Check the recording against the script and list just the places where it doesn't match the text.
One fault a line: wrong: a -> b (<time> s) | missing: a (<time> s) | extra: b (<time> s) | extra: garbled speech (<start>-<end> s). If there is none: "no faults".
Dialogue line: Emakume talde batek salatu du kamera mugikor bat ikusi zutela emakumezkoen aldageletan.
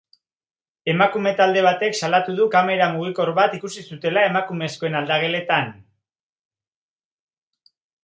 no faults